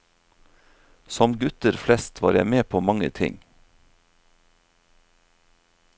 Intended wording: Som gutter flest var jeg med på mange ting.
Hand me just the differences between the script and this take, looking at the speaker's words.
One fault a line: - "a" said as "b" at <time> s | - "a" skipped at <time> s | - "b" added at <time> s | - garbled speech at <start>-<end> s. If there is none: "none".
none